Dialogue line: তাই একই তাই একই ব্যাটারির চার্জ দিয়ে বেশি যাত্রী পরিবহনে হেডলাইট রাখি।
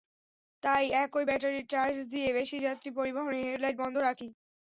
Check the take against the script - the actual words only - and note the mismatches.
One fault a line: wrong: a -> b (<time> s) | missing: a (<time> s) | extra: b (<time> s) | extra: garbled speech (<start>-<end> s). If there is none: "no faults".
missing: তাই একই (1.2 s)
extra: বন্ধ (3.8 s)